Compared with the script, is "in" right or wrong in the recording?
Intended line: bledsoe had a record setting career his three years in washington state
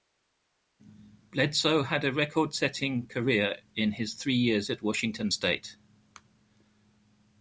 wrong